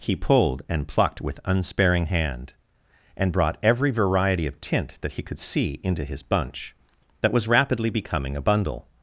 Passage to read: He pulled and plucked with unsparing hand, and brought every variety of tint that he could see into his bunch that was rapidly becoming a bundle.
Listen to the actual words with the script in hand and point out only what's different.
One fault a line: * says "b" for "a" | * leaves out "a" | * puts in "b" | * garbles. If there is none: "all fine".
all fine